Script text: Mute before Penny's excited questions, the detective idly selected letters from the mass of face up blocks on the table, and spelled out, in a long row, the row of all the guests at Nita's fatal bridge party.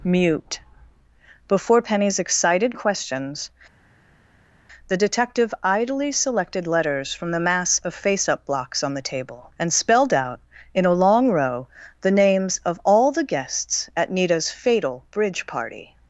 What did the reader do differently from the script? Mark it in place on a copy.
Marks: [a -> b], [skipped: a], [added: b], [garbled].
Mute before Penny's excited questions, the detective idly selected letters from the mass of face up blocks on the table, and spelled out, in a long row, the [row -> names] of all the guests at Nita's fatal bridge party.